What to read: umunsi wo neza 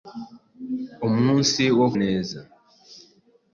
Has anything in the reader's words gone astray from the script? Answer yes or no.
no